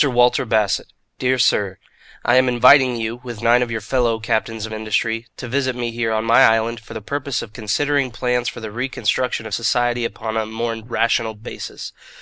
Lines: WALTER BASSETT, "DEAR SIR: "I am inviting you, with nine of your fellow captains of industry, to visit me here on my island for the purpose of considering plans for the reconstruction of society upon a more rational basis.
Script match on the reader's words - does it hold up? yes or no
yes